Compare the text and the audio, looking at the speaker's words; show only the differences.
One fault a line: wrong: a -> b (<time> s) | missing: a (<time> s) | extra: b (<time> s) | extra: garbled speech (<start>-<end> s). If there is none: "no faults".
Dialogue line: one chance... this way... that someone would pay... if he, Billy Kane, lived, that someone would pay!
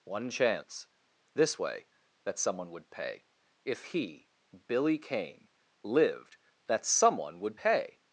no faults